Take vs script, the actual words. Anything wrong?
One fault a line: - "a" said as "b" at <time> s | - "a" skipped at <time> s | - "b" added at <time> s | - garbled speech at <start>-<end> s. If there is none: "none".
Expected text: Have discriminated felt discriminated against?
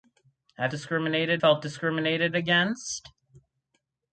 none